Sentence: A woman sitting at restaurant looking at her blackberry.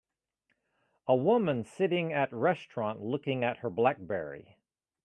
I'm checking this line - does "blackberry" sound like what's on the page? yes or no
yes